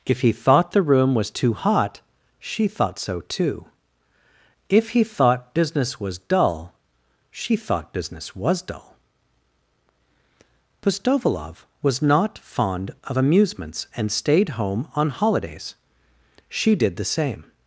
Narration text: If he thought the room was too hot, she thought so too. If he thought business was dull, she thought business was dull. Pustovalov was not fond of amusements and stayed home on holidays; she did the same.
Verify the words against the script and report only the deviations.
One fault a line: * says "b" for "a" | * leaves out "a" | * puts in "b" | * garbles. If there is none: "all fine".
all fine